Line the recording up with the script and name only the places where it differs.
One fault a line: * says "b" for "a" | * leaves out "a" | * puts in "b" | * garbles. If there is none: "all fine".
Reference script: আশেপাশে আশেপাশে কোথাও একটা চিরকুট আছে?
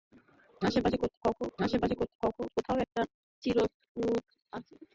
all fine